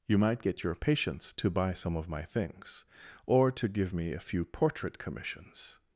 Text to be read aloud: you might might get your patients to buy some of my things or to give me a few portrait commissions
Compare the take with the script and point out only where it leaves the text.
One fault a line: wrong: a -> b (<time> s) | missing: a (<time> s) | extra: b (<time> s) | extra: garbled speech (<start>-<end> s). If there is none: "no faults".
missing: might (0.4 s)